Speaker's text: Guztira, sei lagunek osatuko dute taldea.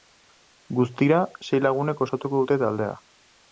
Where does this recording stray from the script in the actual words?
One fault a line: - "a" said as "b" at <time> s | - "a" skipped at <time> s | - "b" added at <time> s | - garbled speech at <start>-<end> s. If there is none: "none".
none